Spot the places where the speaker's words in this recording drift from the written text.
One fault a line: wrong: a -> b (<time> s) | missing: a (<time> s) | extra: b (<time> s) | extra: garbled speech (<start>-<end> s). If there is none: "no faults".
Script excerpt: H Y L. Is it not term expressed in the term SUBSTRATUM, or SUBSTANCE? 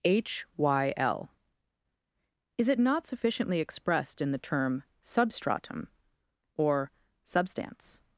wrong: term -> sufficiently (3.0 s)